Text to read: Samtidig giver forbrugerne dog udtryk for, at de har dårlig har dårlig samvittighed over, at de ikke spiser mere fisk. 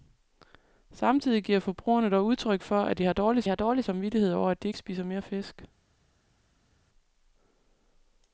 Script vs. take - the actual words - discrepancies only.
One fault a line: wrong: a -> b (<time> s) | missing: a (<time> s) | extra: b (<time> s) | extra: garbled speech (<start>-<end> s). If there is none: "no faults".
no faults